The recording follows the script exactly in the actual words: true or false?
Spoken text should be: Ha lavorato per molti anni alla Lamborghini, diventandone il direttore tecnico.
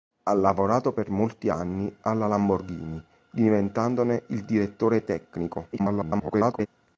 false